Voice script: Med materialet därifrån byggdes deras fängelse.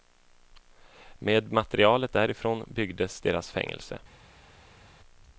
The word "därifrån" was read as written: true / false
true